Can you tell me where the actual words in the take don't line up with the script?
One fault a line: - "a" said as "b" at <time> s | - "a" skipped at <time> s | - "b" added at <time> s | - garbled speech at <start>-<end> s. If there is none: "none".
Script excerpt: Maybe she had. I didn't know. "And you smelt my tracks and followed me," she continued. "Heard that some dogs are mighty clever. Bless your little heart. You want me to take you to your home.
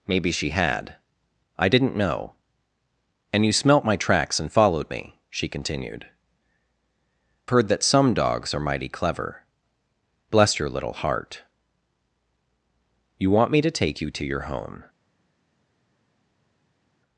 none